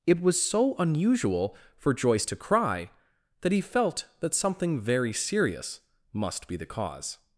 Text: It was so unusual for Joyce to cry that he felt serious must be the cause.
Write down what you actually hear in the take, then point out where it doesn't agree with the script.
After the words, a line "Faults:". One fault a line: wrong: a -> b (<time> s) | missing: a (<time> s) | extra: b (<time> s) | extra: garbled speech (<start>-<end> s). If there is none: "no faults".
It was so unusual for Joyce to cry that he felt that something very serious must be the cause.
Faults:
extra: that something very (4.2 s)